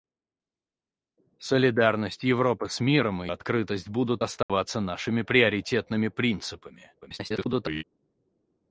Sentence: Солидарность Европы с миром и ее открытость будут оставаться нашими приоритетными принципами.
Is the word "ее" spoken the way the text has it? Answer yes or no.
no